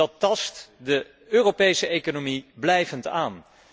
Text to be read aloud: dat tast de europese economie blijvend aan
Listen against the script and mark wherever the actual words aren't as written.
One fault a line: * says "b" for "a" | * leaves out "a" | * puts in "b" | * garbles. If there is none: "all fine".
all fine